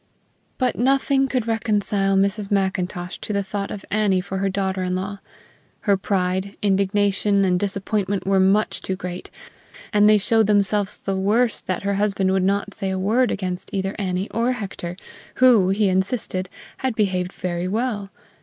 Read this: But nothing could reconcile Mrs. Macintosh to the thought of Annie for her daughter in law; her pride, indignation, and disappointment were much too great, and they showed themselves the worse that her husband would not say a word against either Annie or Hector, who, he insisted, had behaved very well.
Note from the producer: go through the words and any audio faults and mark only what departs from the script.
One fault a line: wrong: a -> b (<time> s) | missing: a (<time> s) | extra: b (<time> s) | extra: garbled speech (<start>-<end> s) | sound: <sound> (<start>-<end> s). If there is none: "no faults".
no faults